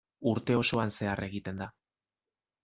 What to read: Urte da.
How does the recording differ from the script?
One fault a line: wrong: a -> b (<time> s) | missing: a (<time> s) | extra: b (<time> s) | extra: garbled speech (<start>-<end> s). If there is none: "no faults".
extra: osoan zehar egiten (0.6 s)